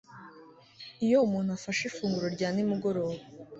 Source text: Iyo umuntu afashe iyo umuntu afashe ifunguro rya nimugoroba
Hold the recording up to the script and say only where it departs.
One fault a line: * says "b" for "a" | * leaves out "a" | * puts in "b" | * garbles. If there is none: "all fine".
* leaves out "iyo umuntu afashe"